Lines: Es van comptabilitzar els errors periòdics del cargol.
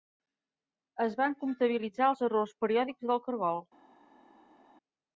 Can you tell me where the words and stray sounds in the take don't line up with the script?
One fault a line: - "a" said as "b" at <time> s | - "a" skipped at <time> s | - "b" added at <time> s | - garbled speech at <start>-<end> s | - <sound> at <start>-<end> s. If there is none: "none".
none